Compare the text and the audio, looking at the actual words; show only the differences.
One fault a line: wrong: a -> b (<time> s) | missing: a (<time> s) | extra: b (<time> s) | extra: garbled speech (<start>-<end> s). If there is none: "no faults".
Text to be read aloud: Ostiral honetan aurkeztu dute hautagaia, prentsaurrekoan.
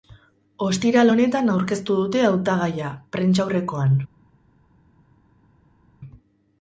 no faults